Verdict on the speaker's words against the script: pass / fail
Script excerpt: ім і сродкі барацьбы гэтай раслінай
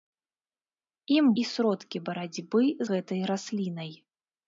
pass